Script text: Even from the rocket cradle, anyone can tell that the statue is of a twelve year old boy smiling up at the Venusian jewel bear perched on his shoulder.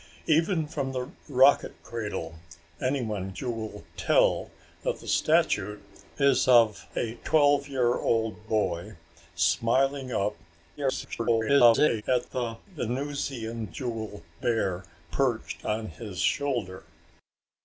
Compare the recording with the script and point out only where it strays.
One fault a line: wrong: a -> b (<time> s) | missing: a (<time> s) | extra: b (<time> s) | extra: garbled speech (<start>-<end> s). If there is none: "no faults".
wrong: can -> jewel (3.3 s)
extra: garbled speech (10.8-12.0 s)